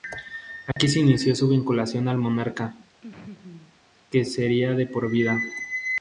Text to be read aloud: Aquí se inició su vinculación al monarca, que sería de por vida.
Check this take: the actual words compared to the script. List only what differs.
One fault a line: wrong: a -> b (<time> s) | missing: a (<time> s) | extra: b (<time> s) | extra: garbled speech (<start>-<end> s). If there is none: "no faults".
no faults